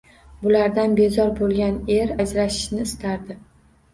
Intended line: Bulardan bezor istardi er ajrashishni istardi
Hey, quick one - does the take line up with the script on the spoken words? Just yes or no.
no